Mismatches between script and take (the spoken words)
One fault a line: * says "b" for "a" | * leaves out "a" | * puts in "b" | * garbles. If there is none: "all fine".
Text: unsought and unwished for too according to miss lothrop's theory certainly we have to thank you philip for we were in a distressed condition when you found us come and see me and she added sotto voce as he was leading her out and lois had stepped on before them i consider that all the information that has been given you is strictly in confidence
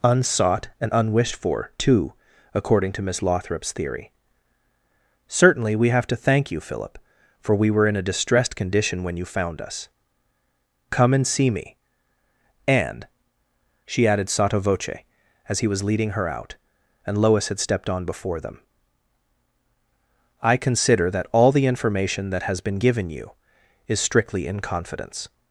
all fine